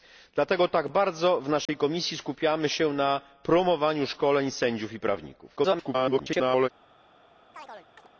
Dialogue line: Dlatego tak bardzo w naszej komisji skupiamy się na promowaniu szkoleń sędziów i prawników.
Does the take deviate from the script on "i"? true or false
false